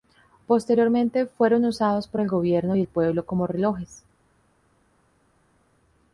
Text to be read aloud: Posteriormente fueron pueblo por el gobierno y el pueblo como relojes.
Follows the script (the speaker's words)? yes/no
no